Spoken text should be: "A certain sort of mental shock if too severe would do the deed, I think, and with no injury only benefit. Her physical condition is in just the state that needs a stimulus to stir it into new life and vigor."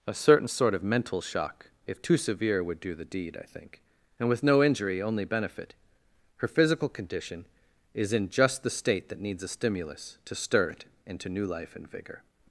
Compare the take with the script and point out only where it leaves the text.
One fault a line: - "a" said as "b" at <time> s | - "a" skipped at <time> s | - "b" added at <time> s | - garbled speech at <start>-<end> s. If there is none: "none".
none